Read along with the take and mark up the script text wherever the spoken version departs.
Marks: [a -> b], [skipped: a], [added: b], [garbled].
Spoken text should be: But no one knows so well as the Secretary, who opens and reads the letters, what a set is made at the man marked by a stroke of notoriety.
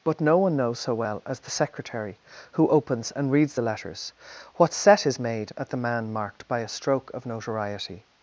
But no one knows so well as the Secretary, who opens and reads the letters, what [skipped: a] set is made at the man marked by a stroke of notoriety.